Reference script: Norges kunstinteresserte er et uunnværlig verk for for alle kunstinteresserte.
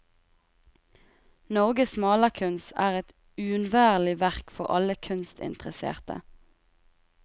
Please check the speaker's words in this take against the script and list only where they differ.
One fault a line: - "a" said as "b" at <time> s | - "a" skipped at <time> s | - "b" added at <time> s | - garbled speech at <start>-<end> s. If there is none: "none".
- "kunstinteresserte" said as "malerkunst" at 2.0 s
- "for" skipped at 4.7 s